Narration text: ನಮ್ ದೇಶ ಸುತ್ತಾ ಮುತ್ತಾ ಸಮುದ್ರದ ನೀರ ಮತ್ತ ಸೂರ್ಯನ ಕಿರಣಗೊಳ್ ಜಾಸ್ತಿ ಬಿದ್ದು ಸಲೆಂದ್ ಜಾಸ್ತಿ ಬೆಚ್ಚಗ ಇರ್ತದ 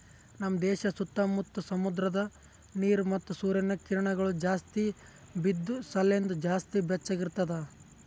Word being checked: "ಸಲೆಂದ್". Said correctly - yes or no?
yes